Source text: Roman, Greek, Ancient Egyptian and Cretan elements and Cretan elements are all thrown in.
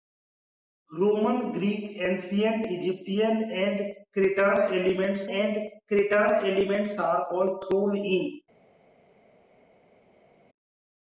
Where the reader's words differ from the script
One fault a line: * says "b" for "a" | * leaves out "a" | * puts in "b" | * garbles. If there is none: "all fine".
all fine